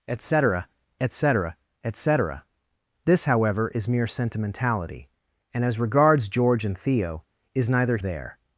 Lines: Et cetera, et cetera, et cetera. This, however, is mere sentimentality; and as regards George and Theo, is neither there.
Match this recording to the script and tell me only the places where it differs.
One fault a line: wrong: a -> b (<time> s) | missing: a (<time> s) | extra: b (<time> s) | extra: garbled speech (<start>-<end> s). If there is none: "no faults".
no faults